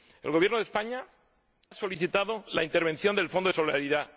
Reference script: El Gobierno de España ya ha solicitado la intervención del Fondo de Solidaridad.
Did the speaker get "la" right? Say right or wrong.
right